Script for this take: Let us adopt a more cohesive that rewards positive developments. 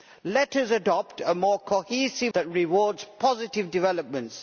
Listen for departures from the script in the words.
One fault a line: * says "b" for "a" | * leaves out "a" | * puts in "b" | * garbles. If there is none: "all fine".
all fine